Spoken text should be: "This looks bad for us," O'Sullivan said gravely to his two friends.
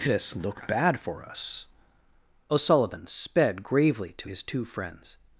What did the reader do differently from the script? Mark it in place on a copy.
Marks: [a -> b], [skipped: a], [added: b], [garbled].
"This [looks -> look] bad for us," O'Sullivan [said -> sped] gravely to his two friends.